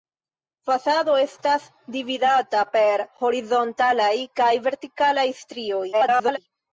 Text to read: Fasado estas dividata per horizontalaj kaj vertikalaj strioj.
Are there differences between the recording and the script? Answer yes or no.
yes